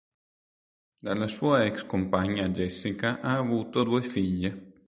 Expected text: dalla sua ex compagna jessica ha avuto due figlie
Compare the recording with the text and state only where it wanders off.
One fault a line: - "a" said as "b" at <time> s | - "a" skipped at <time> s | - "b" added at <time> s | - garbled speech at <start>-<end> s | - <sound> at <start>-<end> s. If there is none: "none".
none